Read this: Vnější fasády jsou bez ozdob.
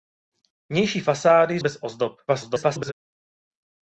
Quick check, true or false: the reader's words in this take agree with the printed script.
false